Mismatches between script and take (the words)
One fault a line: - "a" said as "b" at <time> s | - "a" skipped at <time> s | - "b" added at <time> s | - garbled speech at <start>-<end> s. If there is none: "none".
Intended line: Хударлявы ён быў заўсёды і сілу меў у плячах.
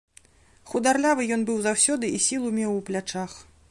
none